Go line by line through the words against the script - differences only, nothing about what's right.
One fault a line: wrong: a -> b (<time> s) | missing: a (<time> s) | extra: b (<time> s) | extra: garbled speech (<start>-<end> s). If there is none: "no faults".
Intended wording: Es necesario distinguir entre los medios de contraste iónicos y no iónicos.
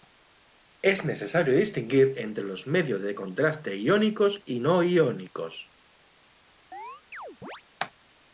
no faults